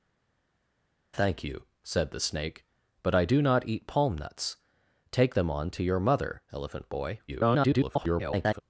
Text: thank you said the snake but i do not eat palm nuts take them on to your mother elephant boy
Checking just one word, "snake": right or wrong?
right